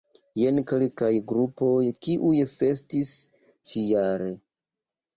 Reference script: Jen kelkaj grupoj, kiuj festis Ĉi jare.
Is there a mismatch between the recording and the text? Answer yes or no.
no